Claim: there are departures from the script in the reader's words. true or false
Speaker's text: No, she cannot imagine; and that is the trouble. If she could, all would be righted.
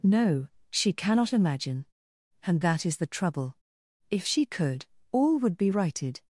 false